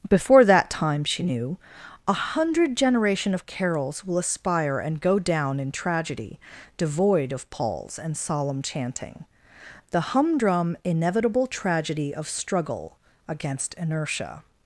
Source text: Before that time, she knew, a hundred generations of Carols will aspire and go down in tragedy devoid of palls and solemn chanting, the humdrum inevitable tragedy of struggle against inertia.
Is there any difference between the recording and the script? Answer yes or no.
yes